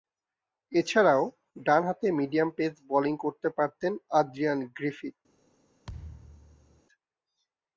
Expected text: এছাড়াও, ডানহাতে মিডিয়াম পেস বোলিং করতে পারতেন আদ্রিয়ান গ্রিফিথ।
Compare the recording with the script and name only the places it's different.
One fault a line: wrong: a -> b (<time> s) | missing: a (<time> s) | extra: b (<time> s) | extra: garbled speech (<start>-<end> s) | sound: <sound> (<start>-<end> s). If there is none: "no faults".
sound: thud (5.8-6.8 s)